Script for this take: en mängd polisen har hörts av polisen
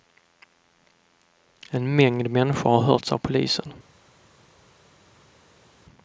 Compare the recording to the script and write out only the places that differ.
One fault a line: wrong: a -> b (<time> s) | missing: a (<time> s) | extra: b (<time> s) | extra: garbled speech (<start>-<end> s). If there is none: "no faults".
wrong: polisen -> människor (2.3 s)